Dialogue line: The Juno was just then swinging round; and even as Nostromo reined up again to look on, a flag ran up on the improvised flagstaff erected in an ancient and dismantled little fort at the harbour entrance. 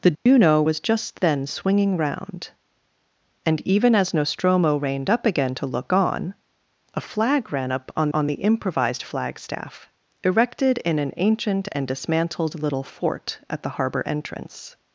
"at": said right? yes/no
yes